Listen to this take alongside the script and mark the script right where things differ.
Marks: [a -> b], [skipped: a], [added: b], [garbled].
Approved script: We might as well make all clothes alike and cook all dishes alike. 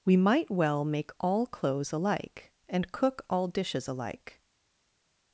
We might [skipped: as] well make all clothes alike and cook all dishes alike.